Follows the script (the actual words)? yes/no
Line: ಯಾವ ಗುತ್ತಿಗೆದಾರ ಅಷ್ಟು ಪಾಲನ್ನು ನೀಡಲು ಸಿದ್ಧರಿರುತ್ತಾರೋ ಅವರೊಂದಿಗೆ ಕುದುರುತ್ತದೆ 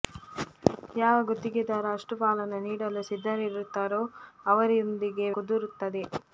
yes